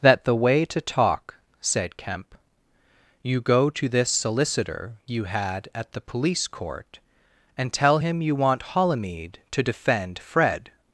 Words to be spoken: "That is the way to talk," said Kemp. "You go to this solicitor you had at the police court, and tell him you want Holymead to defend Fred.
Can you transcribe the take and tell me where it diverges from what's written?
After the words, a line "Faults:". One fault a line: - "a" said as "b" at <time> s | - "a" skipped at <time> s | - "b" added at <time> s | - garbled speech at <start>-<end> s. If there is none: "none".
"That the way to talk," said Kemp. "You go to this solicitor you had at the police court, and tell him you want Holymead to defend Fred.
Faults:
- "is" skipped at 0.2 s